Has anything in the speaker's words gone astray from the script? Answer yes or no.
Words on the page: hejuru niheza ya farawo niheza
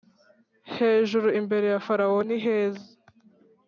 yes